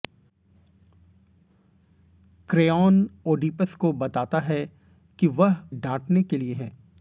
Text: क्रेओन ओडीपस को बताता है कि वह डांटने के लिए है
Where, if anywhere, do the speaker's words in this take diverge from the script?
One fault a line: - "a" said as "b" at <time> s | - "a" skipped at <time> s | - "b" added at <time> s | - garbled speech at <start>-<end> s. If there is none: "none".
none